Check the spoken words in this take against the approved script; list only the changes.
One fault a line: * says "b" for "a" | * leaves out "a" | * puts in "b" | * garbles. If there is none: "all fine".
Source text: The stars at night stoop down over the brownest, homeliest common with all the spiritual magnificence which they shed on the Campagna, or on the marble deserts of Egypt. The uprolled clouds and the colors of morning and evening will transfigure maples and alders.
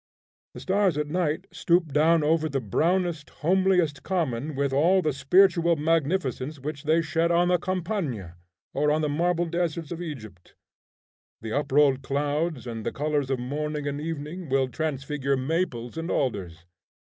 all fine